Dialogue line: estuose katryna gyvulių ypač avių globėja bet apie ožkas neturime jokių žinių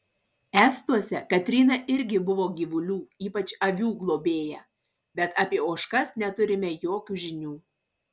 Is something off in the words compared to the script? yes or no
yes